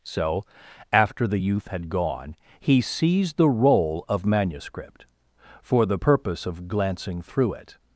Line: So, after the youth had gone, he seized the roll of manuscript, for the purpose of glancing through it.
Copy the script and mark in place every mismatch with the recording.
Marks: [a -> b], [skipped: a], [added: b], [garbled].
So, after the youth had gone, he seized the roll of manuscript, for the purpose of glancing through it.